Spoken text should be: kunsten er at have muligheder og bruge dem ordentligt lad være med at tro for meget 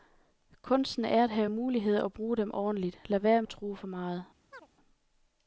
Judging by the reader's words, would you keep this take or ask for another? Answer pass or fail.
fail